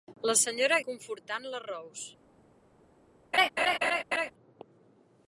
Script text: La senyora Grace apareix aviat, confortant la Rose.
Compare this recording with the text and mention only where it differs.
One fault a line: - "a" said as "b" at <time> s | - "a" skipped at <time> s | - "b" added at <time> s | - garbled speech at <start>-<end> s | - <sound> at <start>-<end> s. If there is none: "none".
- "Grace apareix aviat" skipped at 0.8 s
- laugh at 3.3-4.3 s